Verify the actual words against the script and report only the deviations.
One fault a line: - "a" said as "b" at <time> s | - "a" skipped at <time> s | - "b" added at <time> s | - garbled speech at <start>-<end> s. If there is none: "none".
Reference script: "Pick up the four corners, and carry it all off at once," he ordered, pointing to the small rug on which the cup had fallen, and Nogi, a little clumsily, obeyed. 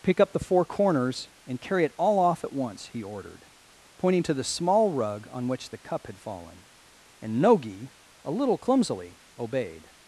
none